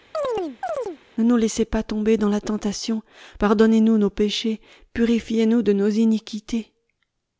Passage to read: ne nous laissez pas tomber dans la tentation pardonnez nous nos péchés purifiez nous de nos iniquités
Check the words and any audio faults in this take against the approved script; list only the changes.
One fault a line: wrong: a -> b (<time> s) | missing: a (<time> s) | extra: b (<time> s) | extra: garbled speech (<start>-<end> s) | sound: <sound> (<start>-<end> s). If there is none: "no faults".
sound: chirp (0.1-1.0 s)